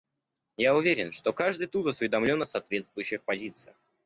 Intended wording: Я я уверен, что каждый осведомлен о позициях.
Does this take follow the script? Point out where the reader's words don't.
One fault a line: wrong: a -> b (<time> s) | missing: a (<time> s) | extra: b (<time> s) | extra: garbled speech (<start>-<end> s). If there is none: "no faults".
missing: я (0.8 s)
extra: тут (1.7 s)
extra: соответствующих (2.5 s)